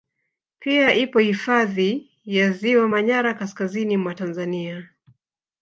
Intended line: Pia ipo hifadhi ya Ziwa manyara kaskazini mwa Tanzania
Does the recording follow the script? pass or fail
pass